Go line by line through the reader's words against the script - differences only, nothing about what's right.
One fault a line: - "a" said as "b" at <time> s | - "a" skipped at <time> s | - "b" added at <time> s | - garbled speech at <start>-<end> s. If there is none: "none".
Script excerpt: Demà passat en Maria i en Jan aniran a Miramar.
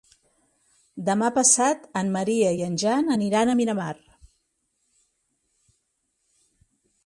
none